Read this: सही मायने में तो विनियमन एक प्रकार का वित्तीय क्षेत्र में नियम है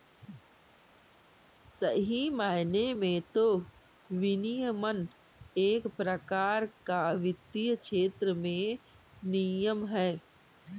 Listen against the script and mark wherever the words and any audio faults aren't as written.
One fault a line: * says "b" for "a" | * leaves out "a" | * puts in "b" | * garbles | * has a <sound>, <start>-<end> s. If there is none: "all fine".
all fine